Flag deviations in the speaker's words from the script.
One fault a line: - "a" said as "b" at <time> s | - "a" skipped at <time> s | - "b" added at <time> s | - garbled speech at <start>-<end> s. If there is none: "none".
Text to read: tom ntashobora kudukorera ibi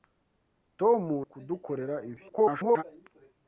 - "ntashobora" skipped at 1.0 s
- garbled speech at 2.3-2.8 s